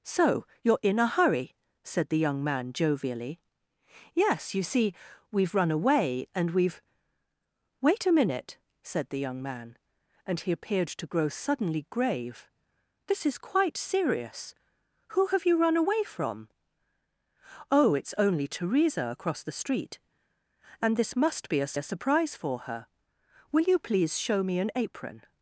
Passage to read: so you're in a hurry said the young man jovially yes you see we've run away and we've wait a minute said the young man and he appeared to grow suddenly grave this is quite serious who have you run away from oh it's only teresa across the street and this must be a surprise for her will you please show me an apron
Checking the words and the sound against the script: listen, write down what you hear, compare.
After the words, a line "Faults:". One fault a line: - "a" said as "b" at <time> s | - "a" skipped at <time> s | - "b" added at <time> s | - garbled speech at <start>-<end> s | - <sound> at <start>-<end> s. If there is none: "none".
so you're in a hurry said the young man jovially yes you see we've run away and we've wait a minute said the young man and he appeared to grow suddenly grave this is quite serious who have you run away from oh it's only teresa across the street and this must be a a surprise for her will you please show me an apron
Faults:
- "a" added at 21.7 s